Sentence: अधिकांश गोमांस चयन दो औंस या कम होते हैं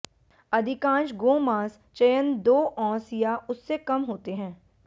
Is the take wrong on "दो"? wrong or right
right